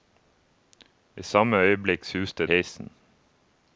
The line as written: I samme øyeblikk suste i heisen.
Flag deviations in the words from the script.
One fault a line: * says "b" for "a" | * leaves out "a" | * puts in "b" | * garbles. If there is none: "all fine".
all fine